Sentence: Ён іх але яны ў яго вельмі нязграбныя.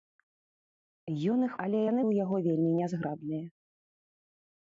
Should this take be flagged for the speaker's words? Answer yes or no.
no